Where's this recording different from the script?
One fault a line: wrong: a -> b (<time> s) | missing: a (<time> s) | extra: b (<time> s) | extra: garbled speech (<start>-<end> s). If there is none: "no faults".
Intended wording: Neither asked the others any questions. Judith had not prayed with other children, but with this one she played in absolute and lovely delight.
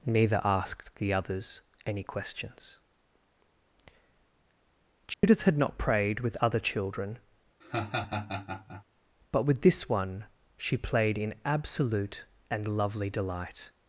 no faults